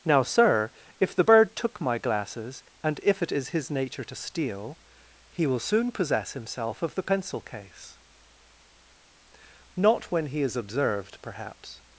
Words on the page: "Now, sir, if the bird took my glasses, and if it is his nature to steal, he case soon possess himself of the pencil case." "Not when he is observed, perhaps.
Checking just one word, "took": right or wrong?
right